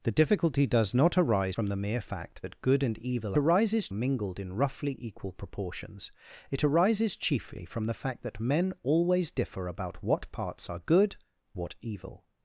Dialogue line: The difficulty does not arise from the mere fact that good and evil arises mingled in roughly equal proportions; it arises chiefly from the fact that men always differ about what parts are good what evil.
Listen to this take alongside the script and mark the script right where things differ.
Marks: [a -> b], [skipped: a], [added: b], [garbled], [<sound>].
The difficulty does not arise from the mere fact that good and evil arises mingled in roughly equal proportions; it arises chiefly from the fact that men always differ about what parts are good what evil.